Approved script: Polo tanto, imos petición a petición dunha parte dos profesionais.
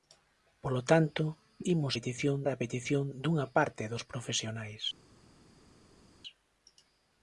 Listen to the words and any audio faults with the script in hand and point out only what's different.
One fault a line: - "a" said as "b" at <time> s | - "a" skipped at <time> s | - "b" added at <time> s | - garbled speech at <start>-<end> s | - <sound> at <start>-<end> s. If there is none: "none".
none